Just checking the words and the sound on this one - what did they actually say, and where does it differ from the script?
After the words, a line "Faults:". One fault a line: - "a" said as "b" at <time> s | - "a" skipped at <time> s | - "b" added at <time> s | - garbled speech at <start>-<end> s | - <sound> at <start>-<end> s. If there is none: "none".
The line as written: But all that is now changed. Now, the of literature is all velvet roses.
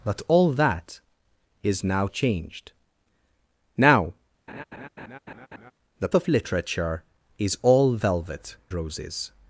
But all that is now changed. Now, the of literature is all velvet roses.
Faults:
- laugh at 4.5-5.7 s